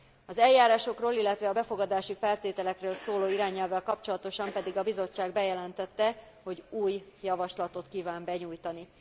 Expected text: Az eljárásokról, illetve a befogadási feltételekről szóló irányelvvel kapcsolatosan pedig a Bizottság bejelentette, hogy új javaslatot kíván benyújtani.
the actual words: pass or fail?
pass